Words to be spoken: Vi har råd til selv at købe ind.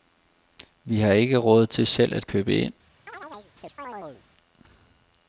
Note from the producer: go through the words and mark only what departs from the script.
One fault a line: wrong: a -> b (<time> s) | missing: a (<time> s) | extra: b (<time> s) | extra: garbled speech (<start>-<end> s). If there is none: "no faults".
extra: ikke (1.1 s)